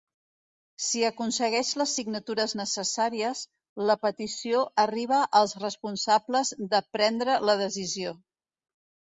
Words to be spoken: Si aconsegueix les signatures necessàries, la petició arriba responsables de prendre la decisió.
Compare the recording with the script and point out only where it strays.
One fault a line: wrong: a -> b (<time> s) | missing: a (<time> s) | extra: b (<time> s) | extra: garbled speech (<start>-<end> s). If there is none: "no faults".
extra: als (5.4 s)